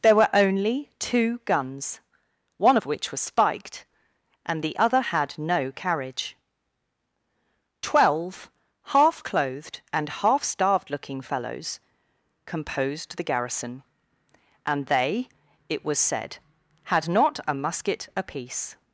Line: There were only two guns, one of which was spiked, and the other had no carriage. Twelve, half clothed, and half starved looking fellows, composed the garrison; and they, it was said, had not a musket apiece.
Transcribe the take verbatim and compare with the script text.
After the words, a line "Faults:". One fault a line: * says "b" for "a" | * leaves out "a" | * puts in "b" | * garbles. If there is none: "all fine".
There were only two guns, one of which was spiked, and the other had no carriage. Twelve, half clothed, and half starved looking fellows, composed the garrison; and they, it was said, had not a musket apiece.
Faults:
all fine